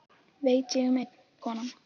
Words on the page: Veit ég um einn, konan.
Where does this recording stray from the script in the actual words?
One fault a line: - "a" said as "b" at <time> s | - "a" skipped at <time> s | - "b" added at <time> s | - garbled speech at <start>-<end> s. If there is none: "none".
none